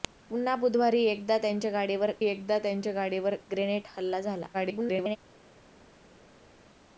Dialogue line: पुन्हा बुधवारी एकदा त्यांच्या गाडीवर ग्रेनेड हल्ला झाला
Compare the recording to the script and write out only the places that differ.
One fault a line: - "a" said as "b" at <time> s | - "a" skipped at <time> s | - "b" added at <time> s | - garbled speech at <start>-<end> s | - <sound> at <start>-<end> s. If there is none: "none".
- "एकदा त्यांच्या गाडीवर" added at 2.2 s
- garbled speech at 4.5-5.2 s